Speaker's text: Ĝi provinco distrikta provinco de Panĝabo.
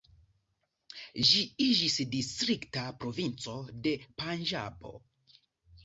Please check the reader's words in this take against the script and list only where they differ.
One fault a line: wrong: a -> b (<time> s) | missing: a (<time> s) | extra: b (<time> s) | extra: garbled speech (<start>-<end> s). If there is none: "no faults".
wrong: provinco -> iĝis (1.7 s)